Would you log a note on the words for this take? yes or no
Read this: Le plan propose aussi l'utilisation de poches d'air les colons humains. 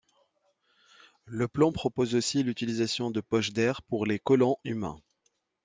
yes